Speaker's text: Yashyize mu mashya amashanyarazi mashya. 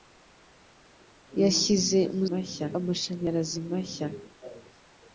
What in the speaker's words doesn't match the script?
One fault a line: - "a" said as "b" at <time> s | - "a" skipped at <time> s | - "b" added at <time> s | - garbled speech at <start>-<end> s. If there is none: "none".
none